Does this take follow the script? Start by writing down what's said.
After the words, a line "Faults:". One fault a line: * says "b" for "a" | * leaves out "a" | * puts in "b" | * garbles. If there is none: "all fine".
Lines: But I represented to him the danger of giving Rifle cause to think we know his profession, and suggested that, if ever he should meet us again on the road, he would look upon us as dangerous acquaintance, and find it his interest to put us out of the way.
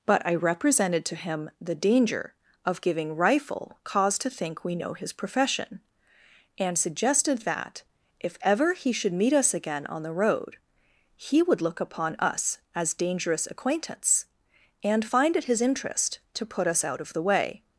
But I represented to him the danger of giving Rifle cause to think we know his profession, and suggested that, if ever he should meet us again on the road, he would look upon us as dangerous acquaintance, and find it his interest to put us out of the way.
Faults:
all fine